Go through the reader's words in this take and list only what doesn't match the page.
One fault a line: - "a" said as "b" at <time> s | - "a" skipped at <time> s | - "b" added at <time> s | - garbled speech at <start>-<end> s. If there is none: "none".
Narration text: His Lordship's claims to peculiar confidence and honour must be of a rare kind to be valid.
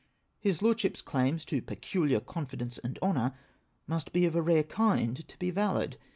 none